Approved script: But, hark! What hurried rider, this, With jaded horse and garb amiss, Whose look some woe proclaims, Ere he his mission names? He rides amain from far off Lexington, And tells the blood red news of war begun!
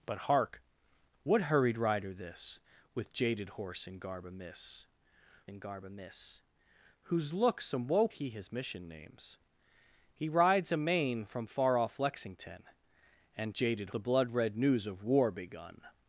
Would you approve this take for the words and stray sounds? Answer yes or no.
no